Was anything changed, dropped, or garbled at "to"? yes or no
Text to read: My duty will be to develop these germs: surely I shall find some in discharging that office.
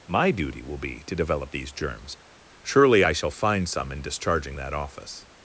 no